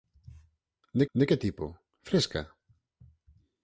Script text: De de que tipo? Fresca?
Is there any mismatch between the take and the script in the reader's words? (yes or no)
no